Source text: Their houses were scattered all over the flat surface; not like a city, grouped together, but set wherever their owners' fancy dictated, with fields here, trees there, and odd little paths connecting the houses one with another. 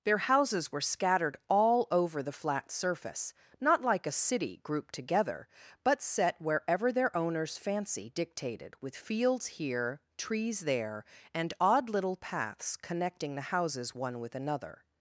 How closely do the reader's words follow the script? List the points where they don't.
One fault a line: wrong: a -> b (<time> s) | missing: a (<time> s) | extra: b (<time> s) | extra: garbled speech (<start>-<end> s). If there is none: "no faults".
no faults